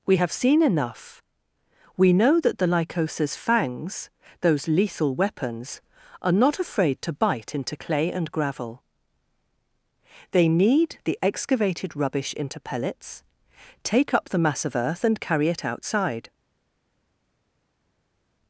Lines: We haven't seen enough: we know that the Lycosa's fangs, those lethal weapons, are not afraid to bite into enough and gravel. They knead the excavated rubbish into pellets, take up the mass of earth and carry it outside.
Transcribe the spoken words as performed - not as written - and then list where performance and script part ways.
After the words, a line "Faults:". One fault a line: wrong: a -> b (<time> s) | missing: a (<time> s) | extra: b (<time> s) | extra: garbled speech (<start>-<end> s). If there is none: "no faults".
We have seen enough: we know that the Lycosa's fangs, those lethal weapons, are not afraid to bite into clay and gravel. They knead the excavated rubbish into pellets, take up the mass of earth and carry it outside.
Faults:
wrong: haven't -> have (0.1 s)
wrong: enough -> clay (7.7 s)